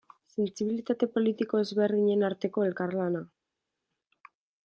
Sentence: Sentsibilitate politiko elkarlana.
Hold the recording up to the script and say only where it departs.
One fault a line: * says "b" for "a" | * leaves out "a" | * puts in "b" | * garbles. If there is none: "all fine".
* puts in "ezberdinen arteko"